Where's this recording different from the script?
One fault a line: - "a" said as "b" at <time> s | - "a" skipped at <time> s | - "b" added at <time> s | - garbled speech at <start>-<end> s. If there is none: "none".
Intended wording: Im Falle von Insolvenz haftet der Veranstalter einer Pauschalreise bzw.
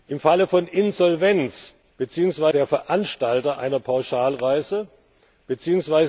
- "haftet" said as "bzw" at 2.0 s